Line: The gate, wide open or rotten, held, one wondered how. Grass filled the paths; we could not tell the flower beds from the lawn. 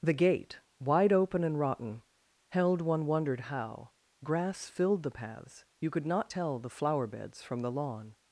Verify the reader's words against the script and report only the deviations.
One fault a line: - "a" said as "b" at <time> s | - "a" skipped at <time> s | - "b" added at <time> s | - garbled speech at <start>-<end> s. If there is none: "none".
- "or" said as "and" at 1.4 s
- "we" said as "you" at 5.8 s